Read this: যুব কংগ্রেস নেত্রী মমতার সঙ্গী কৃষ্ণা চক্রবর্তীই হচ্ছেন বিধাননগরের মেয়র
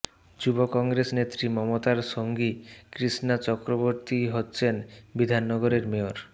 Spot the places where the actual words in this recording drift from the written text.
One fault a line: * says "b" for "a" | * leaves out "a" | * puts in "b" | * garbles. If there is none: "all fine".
all fine